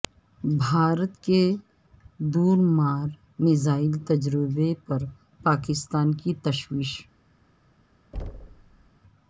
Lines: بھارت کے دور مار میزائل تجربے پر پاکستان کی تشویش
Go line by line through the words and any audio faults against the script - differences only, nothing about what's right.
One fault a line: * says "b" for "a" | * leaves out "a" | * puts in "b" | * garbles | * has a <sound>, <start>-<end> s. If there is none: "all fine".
* has a thud, 8.1-8.9 s